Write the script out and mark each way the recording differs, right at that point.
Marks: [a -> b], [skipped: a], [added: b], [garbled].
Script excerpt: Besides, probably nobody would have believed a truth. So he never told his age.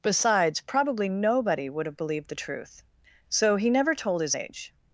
Besides, probably nobody would have believed [a -> the] truth. So he never told his age.